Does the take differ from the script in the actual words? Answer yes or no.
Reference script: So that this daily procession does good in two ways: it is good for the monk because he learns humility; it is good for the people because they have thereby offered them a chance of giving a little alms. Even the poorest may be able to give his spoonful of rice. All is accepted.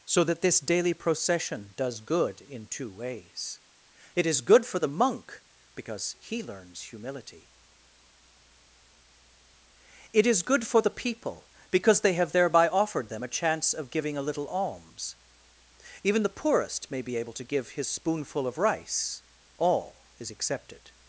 no